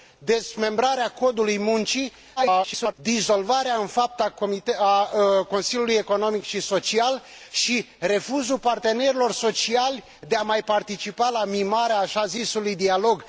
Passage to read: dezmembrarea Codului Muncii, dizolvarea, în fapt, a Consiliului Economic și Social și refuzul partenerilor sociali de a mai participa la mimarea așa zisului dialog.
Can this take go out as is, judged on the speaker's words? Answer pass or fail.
fail